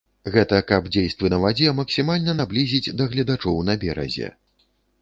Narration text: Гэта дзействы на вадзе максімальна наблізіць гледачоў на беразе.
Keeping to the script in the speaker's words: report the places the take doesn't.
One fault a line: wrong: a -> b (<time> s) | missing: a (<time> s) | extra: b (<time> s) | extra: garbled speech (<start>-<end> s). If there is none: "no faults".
extra: каб (0.7 s)
extra: да (3.0 s)